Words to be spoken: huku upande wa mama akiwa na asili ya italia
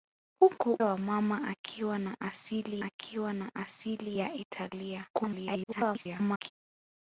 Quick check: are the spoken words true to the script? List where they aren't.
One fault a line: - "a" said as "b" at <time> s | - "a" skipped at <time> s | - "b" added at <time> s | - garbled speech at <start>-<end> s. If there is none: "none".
- "upande" skipped at 0.8 s
- "akiwa na asili" added at 2.8 s
- garbled speech at 5.1-6.5 s